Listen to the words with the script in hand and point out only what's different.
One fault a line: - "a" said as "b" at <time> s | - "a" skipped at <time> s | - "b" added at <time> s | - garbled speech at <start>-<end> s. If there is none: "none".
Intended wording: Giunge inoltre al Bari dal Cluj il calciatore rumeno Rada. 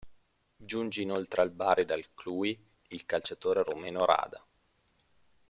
none